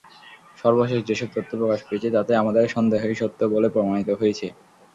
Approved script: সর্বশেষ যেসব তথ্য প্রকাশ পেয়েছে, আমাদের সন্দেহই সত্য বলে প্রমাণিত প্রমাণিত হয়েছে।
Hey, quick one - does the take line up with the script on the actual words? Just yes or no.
no